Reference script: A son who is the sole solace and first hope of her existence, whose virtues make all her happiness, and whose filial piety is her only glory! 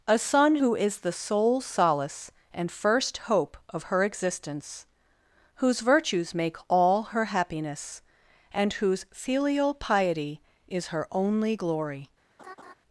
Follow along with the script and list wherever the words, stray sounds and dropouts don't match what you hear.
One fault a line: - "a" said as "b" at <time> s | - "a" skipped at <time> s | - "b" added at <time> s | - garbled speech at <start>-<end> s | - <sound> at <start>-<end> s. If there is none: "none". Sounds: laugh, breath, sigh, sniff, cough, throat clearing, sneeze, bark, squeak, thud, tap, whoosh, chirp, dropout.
- laugh at 12.4-12.7 s